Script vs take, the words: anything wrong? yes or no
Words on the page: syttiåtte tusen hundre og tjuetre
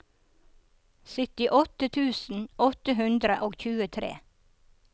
yes